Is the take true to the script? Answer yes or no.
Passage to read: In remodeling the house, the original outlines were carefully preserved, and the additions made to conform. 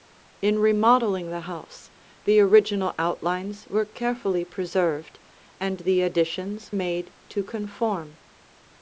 yes